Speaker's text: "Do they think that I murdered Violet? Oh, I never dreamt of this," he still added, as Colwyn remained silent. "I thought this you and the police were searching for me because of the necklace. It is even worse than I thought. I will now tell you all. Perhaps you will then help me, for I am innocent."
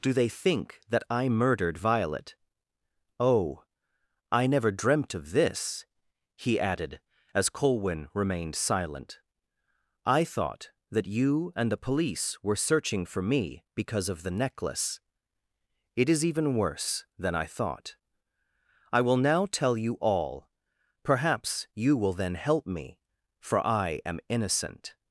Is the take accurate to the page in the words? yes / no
no